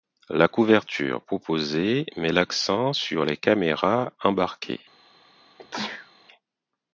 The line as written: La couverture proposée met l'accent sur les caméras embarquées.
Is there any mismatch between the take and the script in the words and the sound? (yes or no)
yes